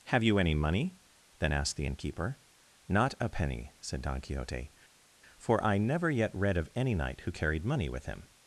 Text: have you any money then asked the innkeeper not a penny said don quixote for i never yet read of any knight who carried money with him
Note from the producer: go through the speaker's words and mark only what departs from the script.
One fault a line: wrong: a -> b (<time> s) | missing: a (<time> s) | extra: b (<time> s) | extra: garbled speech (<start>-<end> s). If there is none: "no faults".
no faults